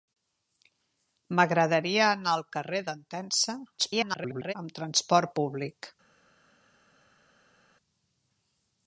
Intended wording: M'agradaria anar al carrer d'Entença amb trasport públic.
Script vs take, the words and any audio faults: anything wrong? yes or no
yes